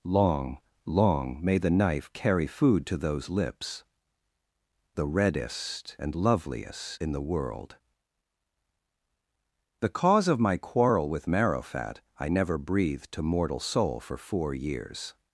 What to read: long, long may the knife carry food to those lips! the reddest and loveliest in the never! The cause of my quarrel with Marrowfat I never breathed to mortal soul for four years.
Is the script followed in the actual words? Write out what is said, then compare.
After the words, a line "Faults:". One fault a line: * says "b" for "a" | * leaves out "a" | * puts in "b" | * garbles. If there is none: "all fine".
long, long may the knife carry food to those lips! the reddest and loveliest in the world! The cause of my quarrel with Marrowfat I never breathed to mortal soul for four years.
Faults:
* says "world" for "never"